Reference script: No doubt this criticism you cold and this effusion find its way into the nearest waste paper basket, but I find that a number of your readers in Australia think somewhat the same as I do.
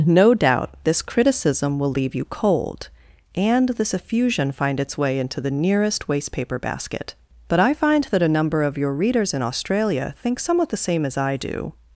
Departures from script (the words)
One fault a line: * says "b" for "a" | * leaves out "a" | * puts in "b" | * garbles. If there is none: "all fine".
* puts in "will leave"